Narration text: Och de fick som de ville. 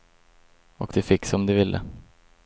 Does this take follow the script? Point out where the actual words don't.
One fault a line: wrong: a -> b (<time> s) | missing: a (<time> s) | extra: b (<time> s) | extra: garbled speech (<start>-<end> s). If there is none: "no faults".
no faults